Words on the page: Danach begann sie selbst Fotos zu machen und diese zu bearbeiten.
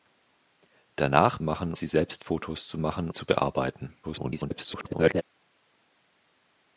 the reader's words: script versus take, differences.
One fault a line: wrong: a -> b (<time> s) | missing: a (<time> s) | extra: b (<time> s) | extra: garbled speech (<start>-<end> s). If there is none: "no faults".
wrong: begann -> machen (1.4 s)
missing: und diese (3.1 s)
extra: garbled speech (4.0-5.2 s)